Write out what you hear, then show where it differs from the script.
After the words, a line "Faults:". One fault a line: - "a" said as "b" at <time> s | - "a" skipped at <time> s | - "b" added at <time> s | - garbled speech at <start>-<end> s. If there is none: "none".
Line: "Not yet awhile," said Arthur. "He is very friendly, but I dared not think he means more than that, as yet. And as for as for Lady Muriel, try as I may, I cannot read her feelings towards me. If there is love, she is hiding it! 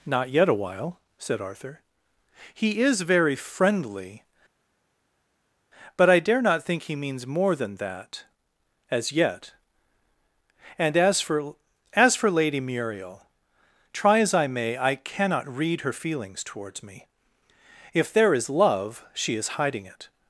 "Not yet awhile," said Arthur. "He is very friendly, but I dare not think he means more than that, as yet. And as for as for Lady Muriel, try as I may, I cannot read her feelings towards me. If there is love, she is hiding it!
Faults:
- "dared" said as "dare" at 6.2 s